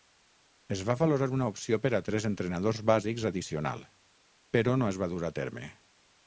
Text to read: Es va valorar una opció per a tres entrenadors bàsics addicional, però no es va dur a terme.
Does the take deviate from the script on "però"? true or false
false